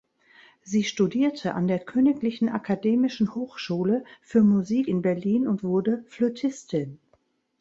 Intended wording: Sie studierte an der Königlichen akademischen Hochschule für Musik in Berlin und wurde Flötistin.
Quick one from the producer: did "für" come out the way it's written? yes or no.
yes